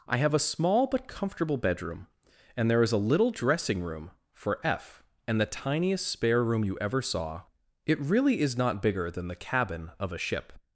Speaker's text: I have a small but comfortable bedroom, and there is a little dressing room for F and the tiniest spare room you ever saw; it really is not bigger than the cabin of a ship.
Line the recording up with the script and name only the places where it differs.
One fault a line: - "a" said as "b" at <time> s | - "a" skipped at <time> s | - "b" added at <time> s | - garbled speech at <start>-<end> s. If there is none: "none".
none